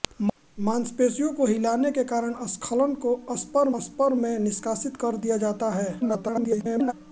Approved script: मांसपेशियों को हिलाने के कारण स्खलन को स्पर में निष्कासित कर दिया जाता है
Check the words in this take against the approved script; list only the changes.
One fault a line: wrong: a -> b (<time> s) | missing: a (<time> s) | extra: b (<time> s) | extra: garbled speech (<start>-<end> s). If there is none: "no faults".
extra: स्पर (3.8 s)
extra: garbled speech (6.0-6.9 s)